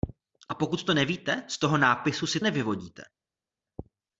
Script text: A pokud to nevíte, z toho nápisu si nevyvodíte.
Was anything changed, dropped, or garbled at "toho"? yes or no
no